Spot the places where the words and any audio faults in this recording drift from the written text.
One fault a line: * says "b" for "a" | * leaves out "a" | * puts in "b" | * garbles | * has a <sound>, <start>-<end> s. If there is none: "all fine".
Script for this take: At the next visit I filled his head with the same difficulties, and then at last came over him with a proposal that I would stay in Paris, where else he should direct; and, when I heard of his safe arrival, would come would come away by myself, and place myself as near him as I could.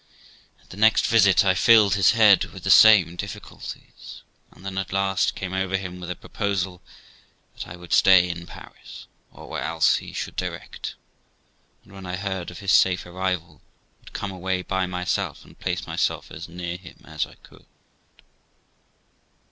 * puts in "or"
* leaves out "would come"